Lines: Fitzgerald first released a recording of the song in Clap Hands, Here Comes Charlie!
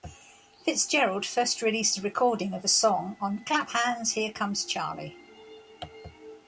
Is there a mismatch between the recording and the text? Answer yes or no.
yes